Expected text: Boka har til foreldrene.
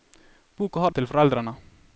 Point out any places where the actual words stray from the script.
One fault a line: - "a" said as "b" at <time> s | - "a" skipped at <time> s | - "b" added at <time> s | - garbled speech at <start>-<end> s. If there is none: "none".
none